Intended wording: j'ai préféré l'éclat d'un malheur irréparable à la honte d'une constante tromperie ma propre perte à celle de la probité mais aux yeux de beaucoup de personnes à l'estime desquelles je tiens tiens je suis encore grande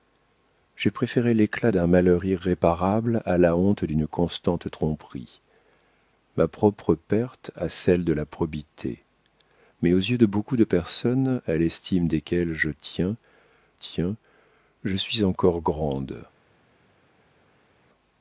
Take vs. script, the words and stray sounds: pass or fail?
pass